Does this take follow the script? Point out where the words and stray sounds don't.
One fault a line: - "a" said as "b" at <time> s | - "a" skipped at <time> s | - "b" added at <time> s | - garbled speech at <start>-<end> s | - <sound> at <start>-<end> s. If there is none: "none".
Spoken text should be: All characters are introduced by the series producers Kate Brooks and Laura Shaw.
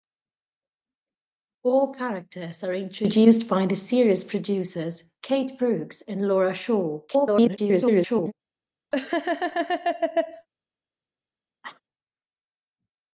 - garbled speech at 7.1-8.3 s
- laugh at 8.9-10.5 s
- cough at 11.6-11.8 s